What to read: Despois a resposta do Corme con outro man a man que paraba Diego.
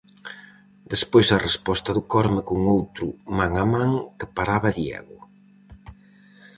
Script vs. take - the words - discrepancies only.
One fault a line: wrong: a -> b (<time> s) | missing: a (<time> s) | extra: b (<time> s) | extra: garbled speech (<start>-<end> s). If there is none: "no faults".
no faults